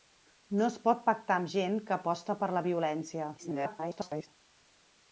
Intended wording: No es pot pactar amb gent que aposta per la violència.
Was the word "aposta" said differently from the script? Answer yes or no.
no